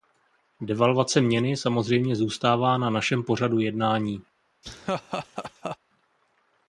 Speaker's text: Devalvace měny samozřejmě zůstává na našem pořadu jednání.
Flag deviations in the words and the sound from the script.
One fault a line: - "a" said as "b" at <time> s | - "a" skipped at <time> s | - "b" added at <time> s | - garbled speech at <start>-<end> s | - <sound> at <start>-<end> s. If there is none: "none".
- laugh at 4.6-5.8 s